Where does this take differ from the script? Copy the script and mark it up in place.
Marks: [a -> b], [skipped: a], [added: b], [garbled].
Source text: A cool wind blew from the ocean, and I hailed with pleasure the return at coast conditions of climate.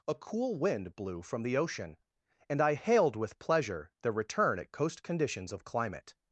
A cool wind blew from the ocean, and I hailed with pleasure the return at coast conditions of climate.